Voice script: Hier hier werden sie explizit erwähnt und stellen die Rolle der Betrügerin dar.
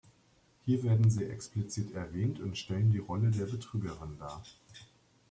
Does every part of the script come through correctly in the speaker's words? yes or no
no